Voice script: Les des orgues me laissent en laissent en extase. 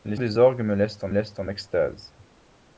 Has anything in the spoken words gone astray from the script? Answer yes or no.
no